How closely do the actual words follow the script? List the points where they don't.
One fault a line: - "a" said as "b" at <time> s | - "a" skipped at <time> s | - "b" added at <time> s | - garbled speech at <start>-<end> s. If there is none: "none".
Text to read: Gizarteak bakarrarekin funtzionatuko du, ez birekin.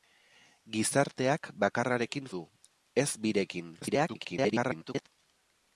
- "funtzionatuko" skipped at 2.3 s
- garbled speech at 3.8-5.1 s